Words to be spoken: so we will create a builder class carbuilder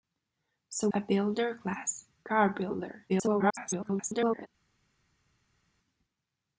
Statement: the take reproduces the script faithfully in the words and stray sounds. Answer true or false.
false